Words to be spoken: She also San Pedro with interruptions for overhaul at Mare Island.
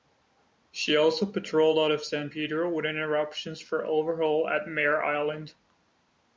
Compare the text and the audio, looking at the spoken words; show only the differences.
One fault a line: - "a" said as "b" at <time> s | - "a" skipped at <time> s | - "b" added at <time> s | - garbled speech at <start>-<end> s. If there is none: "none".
- "patrolled out of" added at 1.3 s